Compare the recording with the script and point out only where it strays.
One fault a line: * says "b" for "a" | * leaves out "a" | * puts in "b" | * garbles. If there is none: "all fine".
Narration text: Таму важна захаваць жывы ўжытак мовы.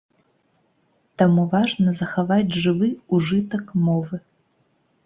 all fine